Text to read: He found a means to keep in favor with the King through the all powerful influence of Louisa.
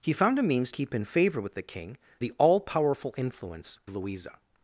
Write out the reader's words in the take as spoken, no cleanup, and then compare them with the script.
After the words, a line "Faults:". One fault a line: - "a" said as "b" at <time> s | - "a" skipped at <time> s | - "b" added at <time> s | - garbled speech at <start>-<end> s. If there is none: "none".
He found a means keep in favor with the King the all powerful influence Louisa.
Faults:
- "to" skipped at 0.7 s
- "through" skipped at 2.0 s
- "of" skipped at 3.8 s